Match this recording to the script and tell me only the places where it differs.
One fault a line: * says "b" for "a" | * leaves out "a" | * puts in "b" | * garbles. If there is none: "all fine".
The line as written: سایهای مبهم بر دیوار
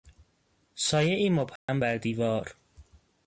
all fine